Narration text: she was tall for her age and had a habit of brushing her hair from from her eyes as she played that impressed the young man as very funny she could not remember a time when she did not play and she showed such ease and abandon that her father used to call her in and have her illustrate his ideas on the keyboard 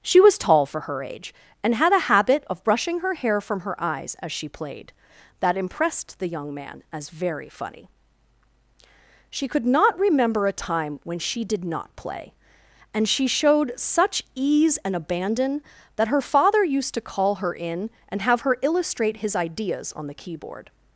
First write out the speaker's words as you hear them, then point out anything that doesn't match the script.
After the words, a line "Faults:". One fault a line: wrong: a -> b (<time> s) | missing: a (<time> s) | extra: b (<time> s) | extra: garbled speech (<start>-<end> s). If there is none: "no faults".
she was tall for her age and had a habit of brushing her hair from her eyes as she played that impressed the young man as very funny she could not remember a time when she did not play and she showed such ease and abandon that her father used to call her in and have her illustrate his ideas on the keyboard
Faults:
missing: from (3.6 s)